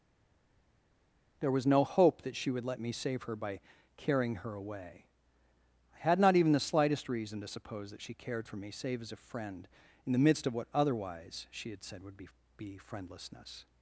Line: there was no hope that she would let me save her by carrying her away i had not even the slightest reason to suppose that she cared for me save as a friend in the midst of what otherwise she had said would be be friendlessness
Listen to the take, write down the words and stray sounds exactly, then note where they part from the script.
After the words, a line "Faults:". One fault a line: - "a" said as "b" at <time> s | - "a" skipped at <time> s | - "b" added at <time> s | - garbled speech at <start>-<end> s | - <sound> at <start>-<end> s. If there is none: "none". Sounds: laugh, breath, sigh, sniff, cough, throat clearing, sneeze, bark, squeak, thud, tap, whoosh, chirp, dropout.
there was no hope that she would let me save her by carrying her away i had not even the slightest reason to suppose that she cared for me save as a friend in the midst of what otherwise she had said would be be friendlessness
Faults:
none